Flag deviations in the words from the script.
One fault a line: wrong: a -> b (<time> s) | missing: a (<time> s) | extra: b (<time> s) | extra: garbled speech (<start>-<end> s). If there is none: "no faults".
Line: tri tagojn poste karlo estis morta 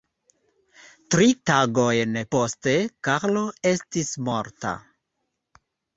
no faults